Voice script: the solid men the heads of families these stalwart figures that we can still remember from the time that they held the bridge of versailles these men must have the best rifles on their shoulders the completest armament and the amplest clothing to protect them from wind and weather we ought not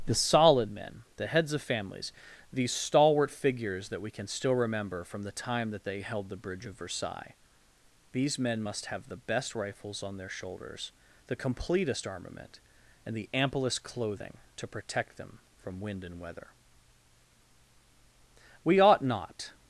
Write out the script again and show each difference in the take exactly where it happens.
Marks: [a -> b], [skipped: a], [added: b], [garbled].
the solid men the heads of families these stalwart figures that we can still remember from the time that they held the bridge of versailles these men must have the best rifles on their shoulders the completest armament and the amplest clothing to protect them from wind and weather we ought not